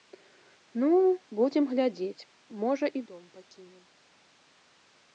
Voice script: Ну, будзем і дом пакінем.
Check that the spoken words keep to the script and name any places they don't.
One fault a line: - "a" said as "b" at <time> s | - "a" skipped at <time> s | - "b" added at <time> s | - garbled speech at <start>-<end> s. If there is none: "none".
- "глядзець можа" added at 1.8 s